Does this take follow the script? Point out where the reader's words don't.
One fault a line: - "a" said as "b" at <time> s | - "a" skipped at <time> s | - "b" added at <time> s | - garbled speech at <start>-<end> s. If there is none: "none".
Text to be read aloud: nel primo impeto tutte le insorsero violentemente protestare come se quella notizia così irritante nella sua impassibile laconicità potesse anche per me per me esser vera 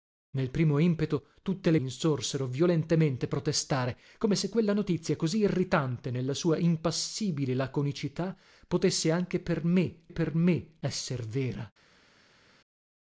none